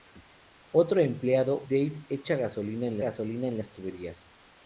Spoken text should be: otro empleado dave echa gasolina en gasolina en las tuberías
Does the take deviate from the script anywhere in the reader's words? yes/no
no